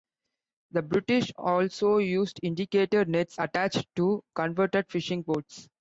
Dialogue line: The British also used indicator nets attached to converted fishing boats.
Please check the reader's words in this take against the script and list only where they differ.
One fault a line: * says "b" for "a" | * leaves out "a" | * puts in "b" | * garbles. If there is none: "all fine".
all fine